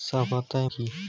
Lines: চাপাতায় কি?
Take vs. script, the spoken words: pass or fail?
pass